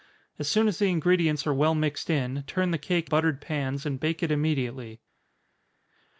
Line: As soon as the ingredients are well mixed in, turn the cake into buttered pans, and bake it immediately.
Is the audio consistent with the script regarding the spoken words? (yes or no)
no